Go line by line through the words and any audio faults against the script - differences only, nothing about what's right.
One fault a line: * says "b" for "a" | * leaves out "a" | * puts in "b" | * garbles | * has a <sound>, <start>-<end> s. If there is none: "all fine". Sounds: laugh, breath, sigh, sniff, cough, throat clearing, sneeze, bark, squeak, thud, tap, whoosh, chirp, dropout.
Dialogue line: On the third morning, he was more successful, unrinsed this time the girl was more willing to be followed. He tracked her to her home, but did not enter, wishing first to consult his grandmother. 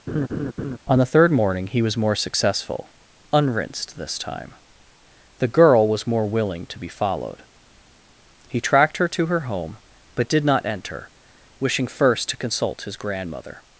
* has a laugh, 0.1-0.8 s